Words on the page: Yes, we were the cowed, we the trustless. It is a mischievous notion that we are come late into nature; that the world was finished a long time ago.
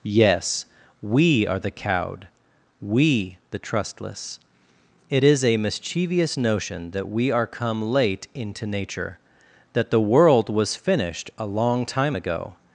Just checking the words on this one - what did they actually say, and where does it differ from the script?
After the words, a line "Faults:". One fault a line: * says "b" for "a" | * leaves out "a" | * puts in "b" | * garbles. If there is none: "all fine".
Yes, we are the cowed, we the trustless. It is a mischievous notion that we are come late into nature; that the world was finished a long time ago.
Faults:
* says "are" for "were"